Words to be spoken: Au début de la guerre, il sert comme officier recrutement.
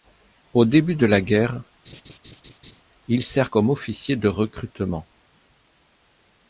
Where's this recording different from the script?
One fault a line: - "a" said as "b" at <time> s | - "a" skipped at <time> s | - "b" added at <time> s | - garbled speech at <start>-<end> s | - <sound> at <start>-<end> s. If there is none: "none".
- laugh at 1.8-2.8 s
- "de" added at 4.2 s